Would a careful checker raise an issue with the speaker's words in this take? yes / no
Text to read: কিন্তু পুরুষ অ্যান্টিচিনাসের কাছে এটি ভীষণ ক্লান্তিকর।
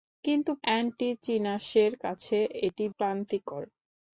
yes